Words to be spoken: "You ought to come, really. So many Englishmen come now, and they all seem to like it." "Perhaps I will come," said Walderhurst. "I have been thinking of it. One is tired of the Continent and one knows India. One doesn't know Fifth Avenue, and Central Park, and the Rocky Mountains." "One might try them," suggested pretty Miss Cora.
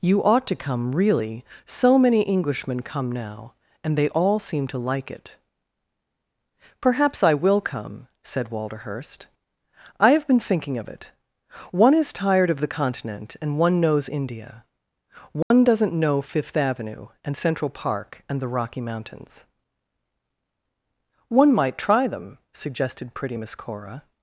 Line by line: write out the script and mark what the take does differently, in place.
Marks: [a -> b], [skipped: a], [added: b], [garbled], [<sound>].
"You ought to come, really. So many Englishmen come now, and they all seem to like it." "Perhaps I will come," said Walderhurst. "I have been thinking of it. One is tired of the Continent and one knows India. One [dropout] doesn't know Fifth Avenue, and Central Park, and the Rocky Mountains." "One might try them," suggested pretty Miss Cora.